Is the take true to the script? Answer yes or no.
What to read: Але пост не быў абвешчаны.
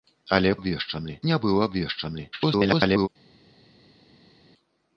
no